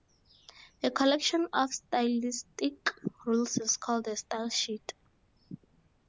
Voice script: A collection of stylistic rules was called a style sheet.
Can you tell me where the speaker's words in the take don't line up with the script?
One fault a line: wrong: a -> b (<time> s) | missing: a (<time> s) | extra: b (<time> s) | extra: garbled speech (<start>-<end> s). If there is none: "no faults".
wrong: was -> is (3.5 s)